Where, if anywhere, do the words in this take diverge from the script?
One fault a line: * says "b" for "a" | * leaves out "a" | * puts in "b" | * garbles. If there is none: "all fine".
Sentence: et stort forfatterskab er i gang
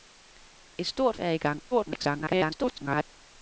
* leaves out "forfatterskab"
* garbles